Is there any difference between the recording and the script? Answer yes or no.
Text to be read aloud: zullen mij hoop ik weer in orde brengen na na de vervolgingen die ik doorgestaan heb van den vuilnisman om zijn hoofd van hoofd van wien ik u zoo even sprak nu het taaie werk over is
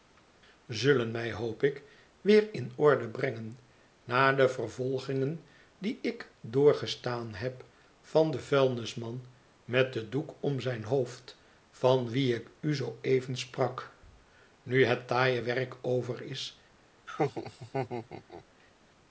yes